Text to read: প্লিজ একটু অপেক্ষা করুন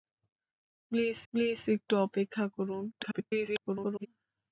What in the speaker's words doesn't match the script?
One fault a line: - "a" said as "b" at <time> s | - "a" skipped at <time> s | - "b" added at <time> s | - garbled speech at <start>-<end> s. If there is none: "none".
- "প্লিজ" added at 1.3 s
- garbled speech at 2.9-4.1 s